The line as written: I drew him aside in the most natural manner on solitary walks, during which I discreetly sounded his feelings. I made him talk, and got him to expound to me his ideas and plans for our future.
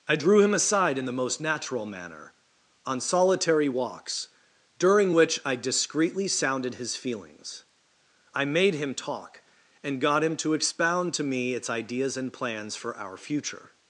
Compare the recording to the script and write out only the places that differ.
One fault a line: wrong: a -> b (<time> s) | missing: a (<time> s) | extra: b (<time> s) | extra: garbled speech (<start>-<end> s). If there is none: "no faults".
wrong: his -> its (11.5 s)